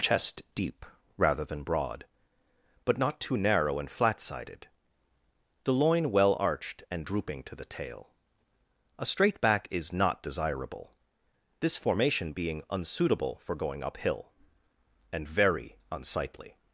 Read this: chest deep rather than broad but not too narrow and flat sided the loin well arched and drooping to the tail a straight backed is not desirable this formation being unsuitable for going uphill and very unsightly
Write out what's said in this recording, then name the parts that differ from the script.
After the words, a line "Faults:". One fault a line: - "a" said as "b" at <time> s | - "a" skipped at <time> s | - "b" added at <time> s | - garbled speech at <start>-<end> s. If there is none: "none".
chest deep rather than broad but not too narrow and flat sided the loin well arched and drooping to the tail a straight back is not desirable this formation being unsuitable for going uphill and very unsightly
Faults:
- "backed" said as "back" at 9.4 s